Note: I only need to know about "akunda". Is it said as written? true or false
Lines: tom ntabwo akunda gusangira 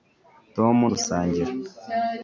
false